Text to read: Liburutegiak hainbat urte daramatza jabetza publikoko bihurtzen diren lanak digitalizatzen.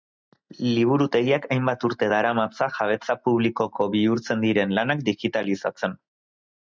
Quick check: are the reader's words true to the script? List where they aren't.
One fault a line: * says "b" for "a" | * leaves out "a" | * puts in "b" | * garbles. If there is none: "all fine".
all fine